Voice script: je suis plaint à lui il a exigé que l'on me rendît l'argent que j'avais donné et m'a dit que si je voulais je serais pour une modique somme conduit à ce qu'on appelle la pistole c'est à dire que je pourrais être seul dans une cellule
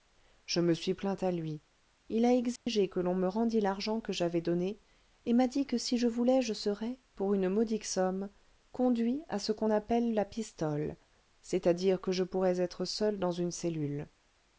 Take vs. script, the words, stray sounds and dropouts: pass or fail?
fail